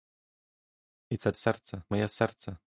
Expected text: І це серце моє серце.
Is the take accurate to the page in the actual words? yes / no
yes